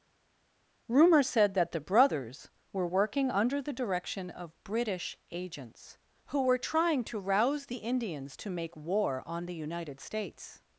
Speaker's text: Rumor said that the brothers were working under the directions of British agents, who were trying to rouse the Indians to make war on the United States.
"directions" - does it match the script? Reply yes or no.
no